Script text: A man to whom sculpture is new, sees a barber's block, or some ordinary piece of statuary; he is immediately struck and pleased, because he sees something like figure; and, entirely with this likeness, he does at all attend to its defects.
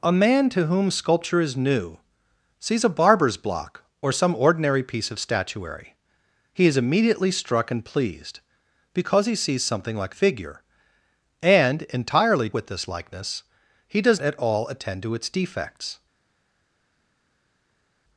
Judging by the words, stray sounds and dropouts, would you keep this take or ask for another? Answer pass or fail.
pass